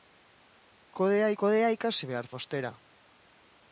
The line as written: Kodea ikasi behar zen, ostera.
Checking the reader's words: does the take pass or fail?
fail